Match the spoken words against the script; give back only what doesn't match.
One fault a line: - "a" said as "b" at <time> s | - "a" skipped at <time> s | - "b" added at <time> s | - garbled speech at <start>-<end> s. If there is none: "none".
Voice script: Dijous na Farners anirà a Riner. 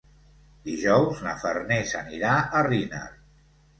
none